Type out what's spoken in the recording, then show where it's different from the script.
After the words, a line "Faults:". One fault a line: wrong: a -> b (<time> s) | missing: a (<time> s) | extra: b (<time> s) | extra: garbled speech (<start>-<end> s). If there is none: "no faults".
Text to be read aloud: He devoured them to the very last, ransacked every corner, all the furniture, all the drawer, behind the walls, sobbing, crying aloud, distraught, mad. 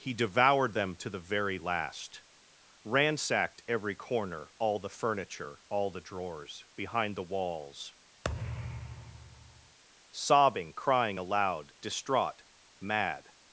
He devoured them to the very last, ransacked every corner, all the furniture, all the drawers, behind the walls, sobbing, crying aloud, distraught, mad.
Faults:
wrong: drawer -> drawers (6.0 s)